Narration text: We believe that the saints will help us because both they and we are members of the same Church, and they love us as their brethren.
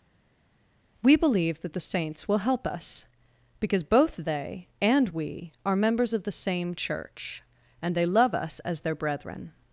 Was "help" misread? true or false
false